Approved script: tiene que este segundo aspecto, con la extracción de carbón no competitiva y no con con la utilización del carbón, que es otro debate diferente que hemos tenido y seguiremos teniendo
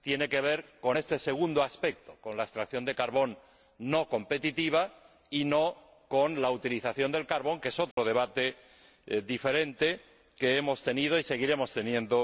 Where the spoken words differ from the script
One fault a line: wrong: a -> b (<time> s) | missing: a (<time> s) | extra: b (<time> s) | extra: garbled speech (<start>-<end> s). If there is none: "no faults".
extra: ver con (0.4 s)
missing: con (6.4 s)